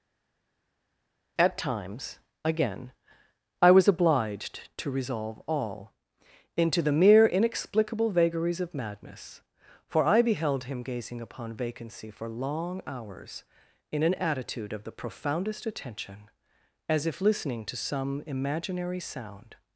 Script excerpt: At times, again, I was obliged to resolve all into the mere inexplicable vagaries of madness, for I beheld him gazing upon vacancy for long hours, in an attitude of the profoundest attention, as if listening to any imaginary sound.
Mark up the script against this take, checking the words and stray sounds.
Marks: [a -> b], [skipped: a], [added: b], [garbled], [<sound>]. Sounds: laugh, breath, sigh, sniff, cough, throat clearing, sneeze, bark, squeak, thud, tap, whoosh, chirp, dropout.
At times, again, I was obliged to resolve all into the mere inexplicable vagaries of madness, for I beheld him gazing upon vacancy for long hours, in an attitude of the profoundest attention, as if listening to [any -> some] imaginary sound.